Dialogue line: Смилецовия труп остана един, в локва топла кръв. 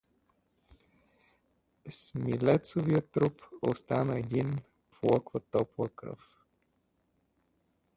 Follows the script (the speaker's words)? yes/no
yes